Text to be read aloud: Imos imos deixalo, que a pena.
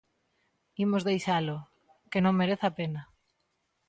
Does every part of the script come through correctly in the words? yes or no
no